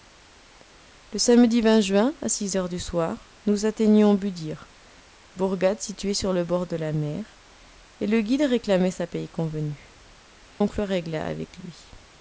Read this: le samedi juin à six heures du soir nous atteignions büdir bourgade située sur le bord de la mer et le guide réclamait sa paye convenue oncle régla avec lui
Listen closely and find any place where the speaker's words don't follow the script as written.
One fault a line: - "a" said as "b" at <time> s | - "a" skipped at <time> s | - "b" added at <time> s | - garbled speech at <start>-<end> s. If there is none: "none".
none